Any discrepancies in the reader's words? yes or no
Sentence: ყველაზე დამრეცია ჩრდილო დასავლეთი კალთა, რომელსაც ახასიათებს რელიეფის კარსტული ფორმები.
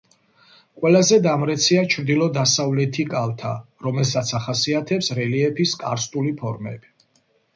no